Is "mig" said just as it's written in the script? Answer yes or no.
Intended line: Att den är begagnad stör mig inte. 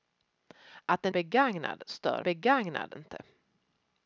no